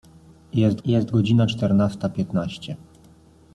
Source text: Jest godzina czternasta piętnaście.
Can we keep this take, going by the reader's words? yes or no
no